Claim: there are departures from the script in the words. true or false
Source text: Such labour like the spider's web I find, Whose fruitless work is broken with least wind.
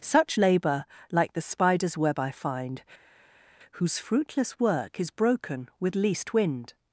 false